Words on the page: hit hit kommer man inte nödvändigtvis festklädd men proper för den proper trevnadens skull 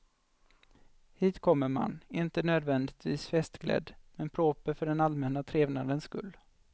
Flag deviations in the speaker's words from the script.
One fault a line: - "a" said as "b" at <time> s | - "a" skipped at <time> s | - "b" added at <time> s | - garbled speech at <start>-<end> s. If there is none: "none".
- "hit" skipped at 1.4 s
- "proper" said as "allmänna" at 5.0 s